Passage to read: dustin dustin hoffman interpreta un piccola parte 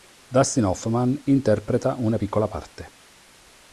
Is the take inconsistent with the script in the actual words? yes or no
yes